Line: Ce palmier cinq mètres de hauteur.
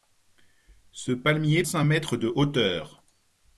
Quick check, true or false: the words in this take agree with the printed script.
true